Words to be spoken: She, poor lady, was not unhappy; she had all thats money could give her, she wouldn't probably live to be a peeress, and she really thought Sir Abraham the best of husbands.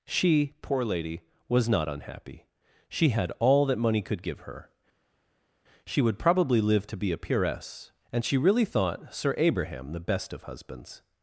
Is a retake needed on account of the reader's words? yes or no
yes